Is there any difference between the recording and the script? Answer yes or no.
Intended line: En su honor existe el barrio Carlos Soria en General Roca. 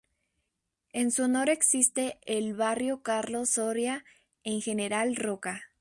no